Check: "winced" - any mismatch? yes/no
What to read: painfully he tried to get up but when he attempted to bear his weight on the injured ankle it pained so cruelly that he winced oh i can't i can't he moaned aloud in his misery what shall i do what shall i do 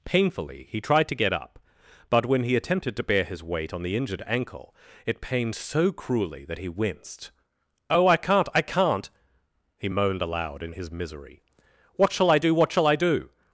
no